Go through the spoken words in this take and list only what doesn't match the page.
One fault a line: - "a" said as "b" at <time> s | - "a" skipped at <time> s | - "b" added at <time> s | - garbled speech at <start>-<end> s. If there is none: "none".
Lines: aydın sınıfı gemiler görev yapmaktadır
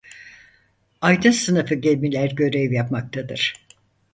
none